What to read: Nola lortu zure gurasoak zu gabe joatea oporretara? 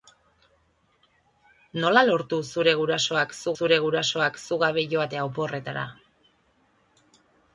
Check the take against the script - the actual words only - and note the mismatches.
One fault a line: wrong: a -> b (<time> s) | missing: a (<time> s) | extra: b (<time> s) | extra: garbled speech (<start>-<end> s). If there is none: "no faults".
extra: zure gurasoak zu (3.6 s)